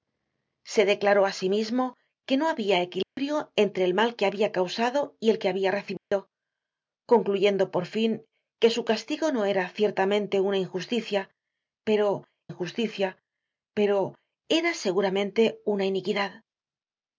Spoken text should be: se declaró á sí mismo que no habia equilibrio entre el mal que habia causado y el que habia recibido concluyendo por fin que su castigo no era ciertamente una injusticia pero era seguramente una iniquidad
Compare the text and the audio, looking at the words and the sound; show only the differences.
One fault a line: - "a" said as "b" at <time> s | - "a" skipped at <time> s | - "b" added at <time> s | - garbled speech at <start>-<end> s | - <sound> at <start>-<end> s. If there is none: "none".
- dropout at 3.0-3.2 s
- dropout at 6.0-6.1 s
- "injusticia pero" added at 12.5 s